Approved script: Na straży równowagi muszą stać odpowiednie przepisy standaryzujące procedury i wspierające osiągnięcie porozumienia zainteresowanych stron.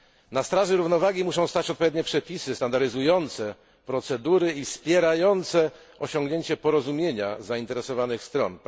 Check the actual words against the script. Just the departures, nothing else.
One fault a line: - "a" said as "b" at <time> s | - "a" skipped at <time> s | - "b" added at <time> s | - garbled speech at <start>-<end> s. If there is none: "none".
none